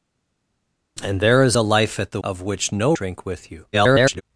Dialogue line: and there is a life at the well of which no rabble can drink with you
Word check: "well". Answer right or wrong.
wrong